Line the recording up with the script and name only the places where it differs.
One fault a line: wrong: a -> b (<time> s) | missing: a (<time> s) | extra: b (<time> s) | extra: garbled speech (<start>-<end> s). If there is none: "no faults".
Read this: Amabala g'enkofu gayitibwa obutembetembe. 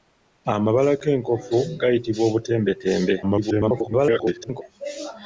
extra: garbled speech (3.2-4.6 s)